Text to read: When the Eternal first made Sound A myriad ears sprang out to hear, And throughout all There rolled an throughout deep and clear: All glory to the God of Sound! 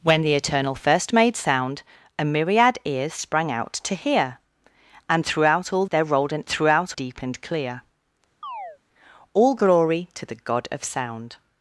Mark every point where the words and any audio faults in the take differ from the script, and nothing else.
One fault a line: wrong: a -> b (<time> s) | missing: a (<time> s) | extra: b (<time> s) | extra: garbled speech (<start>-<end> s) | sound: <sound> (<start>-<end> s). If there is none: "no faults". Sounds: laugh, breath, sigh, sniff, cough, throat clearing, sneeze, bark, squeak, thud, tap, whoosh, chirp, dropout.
sound: chirp (8.4-8.8 s)